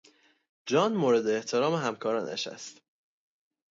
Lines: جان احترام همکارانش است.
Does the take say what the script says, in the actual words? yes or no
no